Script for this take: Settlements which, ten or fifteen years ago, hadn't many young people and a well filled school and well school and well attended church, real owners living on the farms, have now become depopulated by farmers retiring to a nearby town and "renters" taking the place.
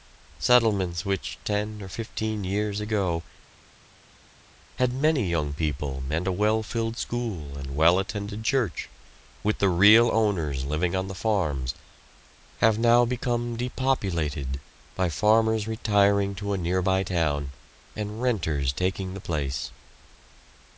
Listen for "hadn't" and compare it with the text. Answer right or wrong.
wrong